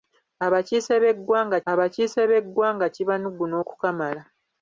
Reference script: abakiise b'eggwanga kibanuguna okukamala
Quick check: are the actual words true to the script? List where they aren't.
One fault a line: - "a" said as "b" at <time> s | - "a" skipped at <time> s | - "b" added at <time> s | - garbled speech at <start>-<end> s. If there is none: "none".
- "abakiise b'eggwanga" added at 1.7 s